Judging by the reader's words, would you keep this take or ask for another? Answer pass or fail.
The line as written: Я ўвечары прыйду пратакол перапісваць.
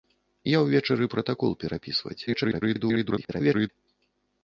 fail